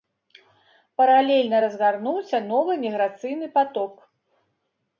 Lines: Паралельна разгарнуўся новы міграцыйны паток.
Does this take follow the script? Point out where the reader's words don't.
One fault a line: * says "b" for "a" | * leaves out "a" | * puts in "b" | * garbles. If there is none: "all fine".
all fine